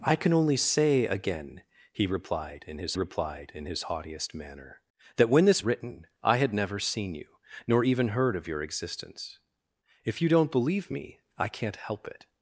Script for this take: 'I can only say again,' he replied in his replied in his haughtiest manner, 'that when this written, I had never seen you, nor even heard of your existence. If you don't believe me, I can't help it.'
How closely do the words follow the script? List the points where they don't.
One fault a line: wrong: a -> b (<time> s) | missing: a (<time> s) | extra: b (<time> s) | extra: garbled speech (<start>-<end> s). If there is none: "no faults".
no faults